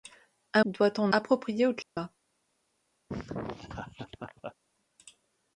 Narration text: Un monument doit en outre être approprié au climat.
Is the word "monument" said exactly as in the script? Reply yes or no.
no